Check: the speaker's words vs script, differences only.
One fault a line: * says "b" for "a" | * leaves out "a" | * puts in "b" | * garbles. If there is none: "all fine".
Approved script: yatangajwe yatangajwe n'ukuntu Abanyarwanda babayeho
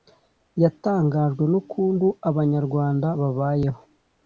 * leaves out "yatangajwe"